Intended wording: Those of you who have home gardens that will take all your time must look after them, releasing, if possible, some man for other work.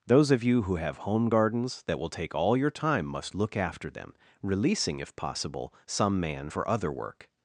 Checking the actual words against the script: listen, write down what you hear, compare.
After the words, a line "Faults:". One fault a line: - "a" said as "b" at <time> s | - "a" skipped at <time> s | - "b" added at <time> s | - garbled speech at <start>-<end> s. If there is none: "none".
Those of you who have home gardens that will take all your time must look after them, releasing, if possible, some man for other work.
Faults:
none